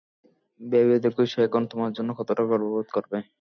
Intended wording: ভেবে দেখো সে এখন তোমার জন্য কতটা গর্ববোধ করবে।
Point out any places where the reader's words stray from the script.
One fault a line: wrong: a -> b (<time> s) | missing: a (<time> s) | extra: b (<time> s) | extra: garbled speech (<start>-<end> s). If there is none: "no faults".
no faults